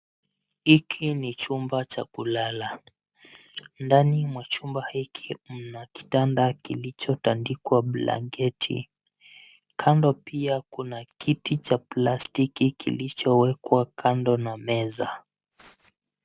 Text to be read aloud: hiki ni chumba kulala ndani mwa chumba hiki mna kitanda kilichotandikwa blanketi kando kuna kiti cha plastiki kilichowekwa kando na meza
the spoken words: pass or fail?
fail